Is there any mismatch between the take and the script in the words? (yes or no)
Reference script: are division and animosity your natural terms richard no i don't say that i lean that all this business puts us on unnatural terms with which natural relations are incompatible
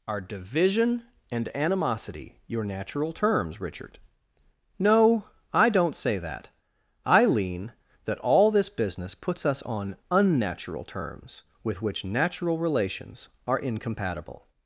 no